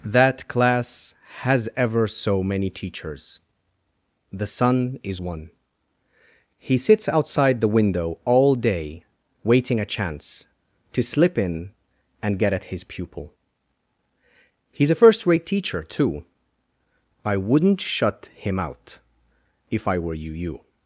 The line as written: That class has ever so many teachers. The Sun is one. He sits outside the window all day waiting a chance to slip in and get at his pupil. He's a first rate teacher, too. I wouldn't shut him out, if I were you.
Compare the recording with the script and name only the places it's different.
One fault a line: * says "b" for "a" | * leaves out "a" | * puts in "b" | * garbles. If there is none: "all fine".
* puts in "you"